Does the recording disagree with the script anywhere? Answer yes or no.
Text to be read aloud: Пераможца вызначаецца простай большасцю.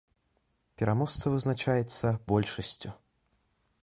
yes